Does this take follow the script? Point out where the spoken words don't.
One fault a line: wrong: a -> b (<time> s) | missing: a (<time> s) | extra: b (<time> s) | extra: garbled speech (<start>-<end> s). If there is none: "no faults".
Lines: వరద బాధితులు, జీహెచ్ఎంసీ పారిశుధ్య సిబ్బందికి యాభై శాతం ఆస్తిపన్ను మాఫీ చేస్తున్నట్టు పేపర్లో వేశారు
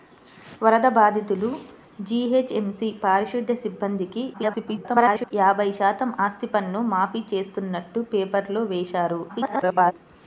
extra: garbled speech (4.3-5.3 s)
extra: garbled speech (9.3-9.9 s)